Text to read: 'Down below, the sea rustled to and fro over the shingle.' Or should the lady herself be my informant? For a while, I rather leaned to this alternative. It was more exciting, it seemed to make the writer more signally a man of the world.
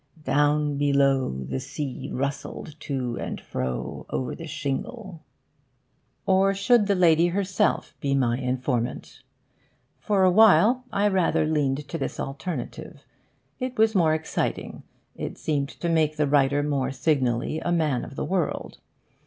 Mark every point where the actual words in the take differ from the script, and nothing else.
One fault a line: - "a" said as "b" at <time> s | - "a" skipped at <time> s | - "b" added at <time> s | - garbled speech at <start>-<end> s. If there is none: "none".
none